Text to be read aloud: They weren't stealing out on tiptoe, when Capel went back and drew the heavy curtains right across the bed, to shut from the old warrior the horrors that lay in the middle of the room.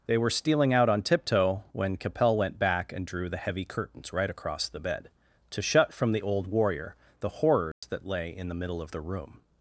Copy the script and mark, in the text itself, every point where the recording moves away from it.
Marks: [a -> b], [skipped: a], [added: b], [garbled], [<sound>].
They [weren't -> were] stealing out on tiptoe, when Capel went back and drew the heavy curtains right across the bed, to shut from the old warrior the horrors [dropout] that lay in the middle of the room.